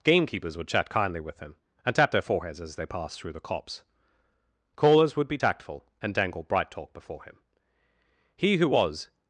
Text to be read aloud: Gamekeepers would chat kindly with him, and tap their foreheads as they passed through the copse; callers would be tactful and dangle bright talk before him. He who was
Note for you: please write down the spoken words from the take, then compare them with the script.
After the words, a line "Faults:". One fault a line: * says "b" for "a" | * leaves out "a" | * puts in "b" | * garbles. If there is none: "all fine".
Gamekeepers would chat kindly with him, and tap their foreheads as they passed through the copse; callers would be tactful and dangle bright talk before him. He who was
Faults:
all fine